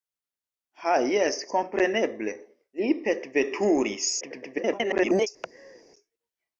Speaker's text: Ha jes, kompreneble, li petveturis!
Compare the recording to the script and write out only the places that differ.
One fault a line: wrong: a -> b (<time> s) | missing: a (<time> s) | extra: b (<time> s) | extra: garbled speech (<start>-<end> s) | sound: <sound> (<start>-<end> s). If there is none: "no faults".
extra: garbled speech (4.2-5.3 s)
sound: laugh (5.4-5.8 s)